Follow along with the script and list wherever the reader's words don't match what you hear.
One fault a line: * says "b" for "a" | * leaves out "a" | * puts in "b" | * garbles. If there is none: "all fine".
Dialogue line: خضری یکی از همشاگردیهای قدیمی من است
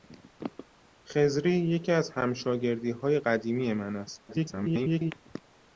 * garbles